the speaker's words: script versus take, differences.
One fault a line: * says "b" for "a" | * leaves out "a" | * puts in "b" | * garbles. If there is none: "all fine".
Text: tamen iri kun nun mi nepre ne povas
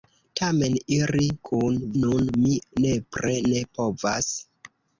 all fine